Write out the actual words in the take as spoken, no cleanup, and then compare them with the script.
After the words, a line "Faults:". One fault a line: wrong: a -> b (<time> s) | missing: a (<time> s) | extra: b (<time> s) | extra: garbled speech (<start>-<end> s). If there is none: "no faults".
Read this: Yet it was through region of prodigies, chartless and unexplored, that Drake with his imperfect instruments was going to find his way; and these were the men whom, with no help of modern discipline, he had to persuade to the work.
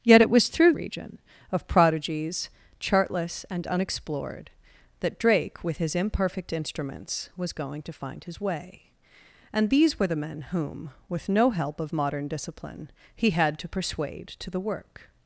Yet it was through region of prodigies, chartless and unexplored, that Drake with his imperfect instruments was going to find his way; and these were the men whom, with no help of modern discipline, he had to persuade to the work.
Faults:
no faults